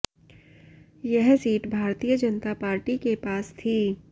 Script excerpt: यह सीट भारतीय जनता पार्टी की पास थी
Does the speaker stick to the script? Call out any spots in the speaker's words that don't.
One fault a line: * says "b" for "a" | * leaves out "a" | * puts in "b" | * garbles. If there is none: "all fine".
* says "के" for "की"